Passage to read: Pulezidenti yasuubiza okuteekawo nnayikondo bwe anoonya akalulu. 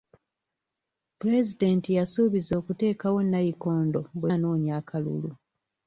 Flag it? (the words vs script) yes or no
no